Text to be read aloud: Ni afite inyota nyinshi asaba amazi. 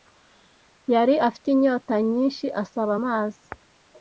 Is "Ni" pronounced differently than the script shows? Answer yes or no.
yes